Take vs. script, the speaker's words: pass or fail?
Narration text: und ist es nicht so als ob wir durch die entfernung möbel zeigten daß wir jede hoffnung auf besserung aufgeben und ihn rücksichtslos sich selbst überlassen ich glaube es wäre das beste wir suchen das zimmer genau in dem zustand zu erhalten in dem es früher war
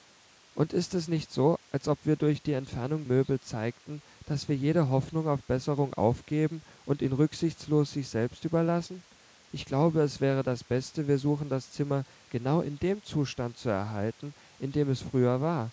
pass